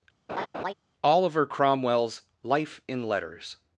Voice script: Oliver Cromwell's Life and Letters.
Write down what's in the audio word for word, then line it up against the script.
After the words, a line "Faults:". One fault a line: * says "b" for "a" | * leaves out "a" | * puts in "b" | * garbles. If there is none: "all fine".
Oliver Cromwell's Life in Letters.
Faults:
* says "in" for "and"